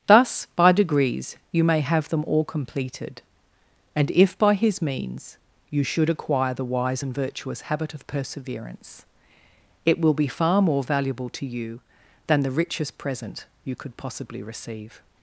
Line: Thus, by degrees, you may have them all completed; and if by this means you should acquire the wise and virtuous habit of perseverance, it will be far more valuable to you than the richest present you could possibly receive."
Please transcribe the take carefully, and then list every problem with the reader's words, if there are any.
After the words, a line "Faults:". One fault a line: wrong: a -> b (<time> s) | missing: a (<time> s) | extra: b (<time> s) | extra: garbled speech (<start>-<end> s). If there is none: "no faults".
Thus, by degrees, you may have them all completed; and if by his means you should acquire the wise and virtuous habit of perseverance, it will be far more valuable to you than the richest present you could possibly receive."
Faults:
wrong: this -> his (4.5 s)